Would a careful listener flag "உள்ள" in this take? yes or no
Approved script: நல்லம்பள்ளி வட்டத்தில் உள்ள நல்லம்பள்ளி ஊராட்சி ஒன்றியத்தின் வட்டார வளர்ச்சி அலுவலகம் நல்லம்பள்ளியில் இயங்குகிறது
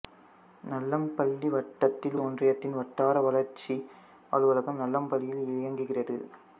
yes